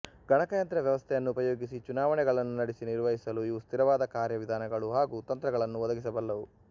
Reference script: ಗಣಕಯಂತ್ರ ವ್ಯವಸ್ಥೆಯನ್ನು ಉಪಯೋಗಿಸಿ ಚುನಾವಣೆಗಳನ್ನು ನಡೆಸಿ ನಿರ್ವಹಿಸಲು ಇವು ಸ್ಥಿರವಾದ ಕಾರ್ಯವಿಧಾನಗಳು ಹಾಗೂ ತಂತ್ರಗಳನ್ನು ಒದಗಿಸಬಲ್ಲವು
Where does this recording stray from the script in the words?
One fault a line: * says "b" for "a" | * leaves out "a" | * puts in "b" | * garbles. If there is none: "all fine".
all fine